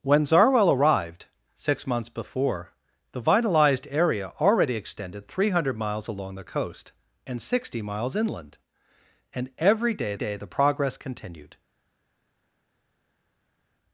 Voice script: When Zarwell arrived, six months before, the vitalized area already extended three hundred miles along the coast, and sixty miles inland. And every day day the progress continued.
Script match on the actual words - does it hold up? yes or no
yes